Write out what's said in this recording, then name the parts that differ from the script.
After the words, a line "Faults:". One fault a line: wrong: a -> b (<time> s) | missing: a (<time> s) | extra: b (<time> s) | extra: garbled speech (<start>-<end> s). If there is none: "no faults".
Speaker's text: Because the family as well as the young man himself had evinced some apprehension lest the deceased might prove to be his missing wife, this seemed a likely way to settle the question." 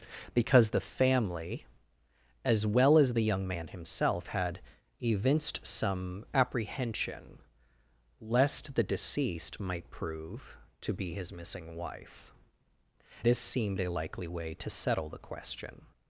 Because the family as well as the young man himself had evinced some apprehension lest the deceased might prove to be his missing wife, this seemed a likely way to settle the question."
Faults:
no faults